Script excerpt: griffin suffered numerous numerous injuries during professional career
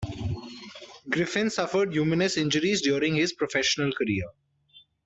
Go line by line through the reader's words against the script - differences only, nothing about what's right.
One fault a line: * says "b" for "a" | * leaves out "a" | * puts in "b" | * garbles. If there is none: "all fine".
* leaves out "numerous"
* puts in "his"